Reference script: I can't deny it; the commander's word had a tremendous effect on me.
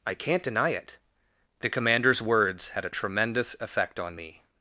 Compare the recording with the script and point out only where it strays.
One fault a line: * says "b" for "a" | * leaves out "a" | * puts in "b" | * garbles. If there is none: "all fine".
* says "words" for "word"